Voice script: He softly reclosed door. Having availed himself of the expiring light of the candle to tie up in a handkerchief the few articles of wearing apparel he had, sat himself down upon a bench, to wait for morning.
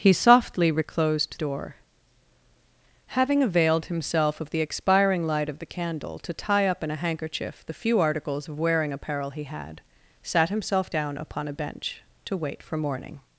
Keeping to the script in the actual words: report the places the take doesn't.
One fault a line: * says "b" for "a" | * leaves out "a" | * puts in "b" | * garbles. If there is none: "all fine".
all fine